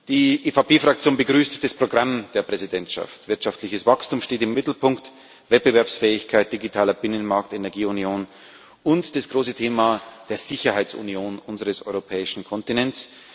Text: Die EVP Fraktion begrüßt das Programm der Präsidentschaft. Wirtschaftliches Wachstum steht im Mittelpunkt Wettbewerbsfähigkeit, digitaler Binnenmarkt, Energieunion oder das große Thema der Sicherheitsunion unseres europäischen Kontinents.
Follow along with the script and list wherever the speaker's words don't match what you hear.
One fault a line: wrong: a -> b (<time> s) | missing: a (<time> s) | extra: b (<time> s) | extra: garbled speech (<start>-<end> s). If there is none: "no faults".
wrong: oder -> und (8.8 s)